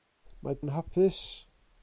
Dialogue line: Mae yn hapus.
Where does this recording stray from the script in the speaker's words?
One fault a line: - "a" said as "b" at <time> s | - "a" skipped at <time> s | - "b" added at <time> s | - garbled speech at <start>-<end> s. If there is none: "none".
none